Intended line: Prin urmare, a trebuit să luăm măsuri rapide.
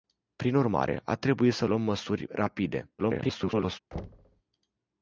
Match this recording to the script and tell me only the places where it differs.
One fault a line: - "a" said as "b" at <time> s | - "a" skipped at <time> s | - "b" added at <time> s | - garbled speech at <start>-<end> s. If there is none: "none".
- garbled speech at 3.0-3.8 s